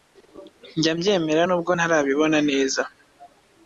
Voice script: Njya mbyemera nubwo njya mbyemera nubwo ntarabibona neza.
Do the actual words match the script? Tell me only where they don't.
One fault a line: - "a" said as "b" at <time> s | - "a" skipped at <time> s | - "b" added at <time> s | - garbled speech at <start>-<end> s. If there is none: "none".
- "njya mbyemera nubwo" skipped at 1.7 s